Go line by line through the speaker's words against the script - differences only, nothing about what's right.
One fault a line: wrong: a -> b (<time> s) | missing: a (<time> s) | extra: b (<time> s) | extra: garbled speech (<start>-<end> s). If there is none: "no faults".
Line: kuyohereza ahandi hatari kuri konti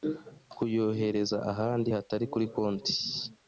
no faults